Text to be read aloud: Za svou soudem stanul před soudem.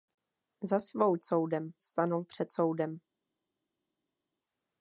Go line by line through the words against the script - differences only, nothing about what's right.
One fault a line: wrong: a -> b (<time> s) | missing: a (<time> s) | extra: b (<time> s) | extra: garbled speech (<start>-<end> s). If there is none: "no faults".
no faults